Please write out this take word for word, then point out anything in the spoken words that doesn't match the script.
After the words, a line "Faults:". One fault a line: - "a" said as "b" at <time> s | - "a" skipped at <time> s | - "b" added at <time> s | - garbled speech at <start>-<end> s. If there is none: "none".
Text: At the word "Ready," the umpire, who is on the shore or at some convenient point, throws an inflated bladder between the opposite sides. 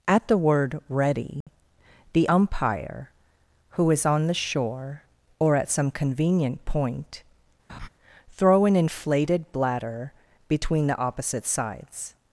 At the word "Ready," the umpire, who is on the shore or at some convenient point, throw an inflated bladder between the opposite sides.
Faults:
- "throws" said as "throw" at 8.4 s